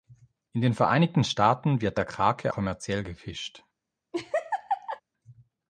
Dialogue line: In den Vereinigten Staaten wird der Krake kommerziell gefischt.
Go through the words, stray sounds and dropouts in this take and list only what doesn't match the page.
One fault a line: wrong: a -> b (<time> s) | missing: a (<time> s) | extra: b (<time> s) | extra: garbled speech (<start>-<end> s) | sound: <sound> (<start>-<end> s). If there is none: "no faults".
sound: laugh (4.1-5.0 s)